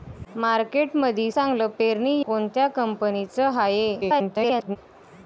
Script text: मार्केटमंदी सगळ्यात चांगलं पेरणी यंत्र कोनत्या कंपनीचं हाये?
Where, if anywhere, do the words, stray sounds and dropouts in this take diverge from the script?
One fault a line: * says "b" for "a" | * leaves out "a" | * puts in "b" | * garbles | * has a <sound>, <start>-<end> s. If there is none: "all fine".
* leaves out "सगळ्यात"
* leaves out "यंत्र"
* garbles